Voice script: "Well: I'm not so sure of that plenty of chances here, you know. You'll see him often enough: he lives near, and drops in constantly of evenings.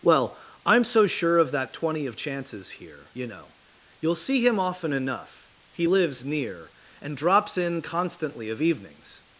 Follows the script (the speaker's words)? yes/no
no